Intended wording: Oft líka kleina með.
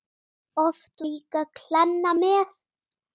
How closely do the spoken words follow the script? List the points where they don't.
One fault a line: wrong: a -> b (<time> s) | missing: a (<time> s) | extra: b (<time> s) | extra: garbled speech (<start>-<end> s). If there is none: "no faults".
no faults